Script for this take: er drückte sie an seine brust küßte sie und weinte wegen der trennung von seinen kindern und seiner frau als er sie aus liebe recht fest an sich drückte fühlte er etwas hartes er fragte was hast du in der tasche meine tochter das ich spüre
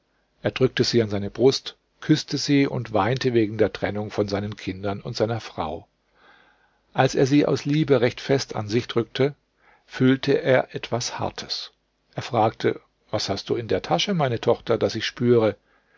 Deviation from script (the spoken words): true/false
false